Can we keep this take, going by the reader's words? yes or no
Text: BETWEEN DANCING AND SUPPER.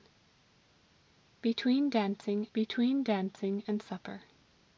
no